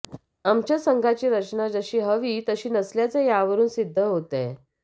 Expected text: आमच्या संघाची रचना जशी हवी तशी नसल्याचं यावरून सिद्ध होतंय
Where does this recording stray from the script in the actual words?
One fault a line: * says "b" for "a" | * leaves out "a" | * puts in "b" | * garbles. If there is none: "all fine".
all fine